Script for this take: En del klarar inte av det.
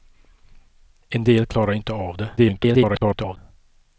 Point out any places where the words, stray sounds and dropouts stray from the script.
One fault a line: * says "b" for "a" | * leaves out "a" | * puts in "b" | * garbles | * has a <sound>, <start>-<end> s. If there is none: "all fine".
* garbles